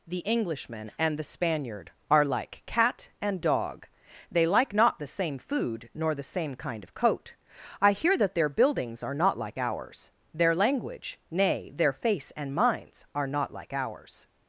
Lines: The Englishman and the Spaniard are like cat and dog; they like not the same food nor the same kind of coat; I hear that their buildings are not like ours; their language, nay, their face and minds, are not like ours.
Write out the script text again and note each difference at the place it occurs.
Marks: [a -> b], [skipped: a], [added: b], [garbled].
The Englishman and the Spaniard are like cat and dog; they like not the same food nor the same kind of coat; I hear that their buildings are not like ours; their language, nay, their face and minds, are not like ours.